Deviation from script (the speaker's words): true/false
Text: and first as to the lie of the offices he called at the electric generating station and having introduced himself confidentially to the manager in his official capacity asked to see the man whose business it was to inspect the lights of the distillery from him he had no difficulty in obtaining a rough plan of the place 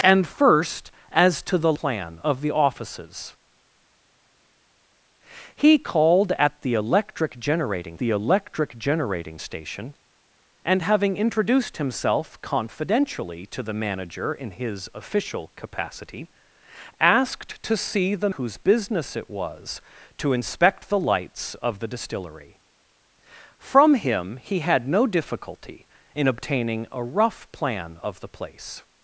true